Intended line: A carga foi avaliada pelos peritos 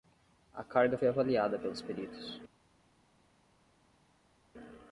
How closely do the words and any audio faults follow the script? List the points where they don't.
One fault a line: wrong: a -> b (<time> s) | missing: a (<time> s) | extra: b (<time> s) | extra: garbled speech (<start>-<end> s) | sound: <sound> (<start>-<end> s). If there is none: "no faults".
no faults